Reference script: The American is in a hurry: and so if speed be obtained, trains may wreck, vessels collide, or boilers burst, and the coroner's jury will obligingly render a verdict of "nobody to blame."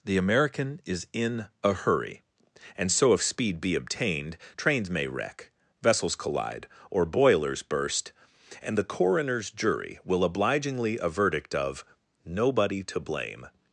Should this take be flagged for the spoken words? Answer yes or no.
yes